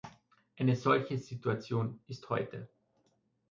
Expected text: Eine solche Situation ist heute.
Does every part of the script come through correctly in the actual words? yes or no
yes